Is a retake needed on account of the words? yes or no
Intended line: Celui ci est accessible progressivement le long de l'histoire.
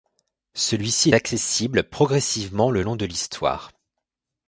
yes